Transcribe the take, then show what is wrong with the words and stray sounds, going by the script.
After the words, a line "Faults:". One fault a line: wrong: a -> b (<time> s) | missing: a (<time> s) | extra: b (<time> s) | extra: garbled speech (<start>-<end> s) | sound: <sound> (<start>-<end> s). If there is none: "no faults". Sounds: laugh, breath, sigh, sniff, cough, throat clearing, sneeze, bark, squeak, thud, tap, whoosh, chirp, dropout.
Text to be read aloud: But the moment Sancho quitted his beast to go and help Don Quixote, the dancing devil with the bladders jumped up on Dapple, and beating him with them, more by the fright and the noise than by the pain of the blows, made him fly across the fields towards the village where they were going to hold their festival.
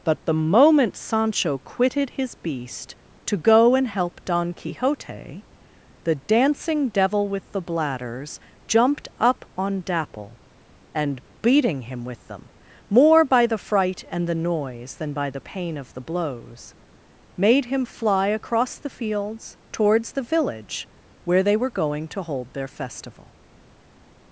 But the moment Sancho quitted his beast to go and help Don Quixote, the dancing devil with the bladders jumped up on Dapple, and beating him with them, more by the fright and the noise than by the pain of the blows, made him fly across the fields towards the village where they were going to hold their festival.
Faults:
no faults